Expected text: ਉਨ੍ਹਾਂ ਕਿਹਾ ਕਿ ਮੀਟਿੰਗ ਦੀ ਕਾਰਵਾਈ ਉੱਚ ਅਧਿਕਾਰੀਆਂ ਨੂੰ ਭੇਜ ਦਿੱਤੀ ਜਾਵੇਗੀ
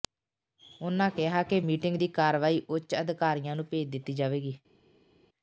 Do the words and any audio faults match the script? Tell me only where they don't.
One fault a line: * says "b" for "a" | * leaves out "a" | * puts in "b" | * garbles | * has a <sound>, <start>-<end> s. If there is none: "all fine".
all fine